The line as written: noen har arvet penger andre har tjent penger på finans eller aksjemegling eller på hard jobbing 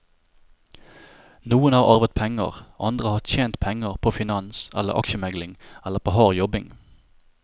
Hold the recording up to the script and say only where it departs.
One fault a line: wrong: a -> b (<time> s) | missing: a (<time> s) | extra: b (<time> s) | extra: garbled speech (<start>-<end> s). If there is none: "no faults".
no faults